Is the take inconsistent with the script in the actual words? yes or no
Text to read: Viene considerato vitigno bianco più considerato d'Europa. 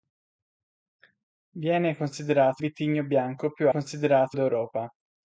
no